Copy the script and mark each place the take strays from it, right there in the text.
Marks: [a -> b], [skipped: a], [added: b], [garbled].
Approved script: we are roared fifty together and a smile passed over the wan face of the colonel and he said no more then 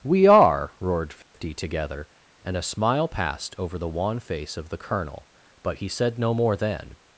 we are roared fifty together and a smile passed over the wan face of the colonel [and -> but] he said no more then